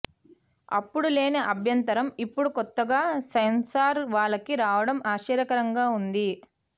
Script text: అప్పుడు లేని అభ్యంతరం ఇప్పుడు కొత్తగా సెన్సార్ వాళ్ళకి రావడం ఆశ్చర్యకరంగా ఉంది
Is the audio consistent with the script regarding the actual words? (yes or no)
yes